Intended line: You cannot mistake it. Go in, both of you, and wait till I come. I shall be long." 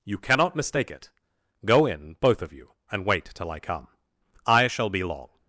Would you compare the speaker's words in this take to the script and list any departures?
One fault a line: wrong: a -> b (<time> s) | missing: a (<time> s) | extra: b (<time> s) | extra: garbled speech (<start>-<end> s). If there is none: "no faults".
no faults